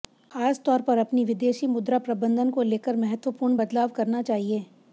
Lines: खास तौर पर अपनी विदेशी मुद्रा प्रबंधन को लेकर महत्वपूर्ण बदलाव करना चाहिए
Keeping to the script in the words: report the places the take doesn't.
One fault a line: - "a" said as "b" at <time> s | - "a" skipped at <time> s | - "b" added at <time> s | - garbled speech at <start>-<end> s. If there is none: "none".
none